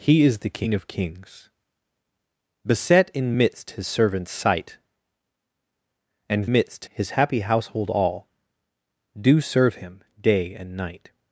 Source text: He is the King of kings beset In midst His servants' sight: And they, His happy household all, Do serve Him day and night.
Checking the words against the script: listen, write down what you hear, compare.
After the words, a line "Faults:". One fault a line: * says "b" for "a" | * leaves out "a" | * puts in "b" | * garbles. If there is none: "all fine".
He is the King of kings beset In midst His servants' sight: And midst, His happy household all, Do serve Him day and night.
Faults:
* says "midst" for "they"